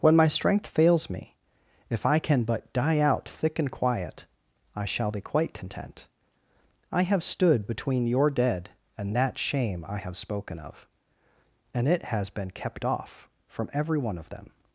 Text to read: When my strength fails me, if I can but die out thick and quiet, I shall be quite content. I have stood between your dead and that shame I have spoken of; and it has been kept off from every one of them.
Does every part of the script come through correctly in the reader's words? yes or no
yes